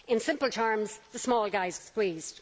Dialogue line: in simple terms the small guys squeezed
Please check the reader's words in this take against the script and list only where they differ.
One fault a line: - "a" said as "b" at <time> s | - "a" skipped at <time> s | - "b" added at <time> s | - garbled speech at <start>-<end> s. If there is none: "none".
none